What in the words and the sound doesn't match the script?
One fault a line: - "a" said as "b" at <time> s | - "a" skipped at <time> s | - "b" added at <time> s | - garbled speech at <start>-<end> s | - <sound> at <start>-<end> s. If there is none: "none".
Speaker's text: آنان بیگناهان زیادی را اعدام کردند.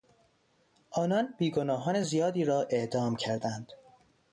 none